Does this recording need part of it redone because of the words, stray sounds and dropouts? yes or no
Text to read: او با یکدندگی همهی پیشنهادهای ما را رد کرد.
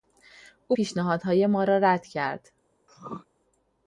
yes